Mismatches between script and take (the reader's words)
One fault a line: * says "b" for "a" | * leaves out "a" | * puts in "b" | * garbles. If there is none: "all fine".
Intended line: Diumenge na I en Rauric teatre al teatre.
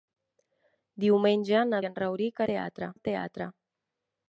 all fine